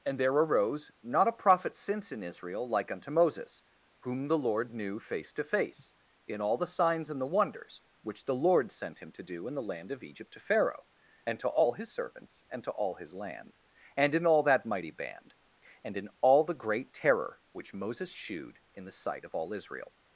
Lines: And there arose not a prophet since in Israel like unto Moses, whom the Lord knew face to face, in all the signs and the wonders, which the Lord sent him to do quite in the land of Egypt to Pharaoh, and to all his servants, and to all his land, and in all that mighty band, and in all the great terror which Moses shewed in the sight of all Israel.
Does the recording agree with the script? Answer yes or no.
no